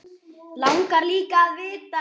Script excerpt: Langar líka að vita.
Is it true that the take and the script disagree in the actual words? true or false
false